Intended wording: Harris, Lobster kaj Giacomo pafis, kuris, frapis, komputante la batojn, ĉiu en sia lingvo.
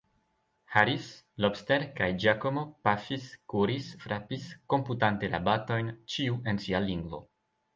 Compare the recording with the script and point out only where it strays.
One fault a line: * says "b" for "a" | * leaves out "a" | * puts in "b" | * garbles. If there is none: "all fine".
all fine